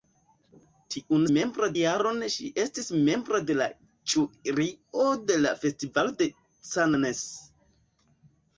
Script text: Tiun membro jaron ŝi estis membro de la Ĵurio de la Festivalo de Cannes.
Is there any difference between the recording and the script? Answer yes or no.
no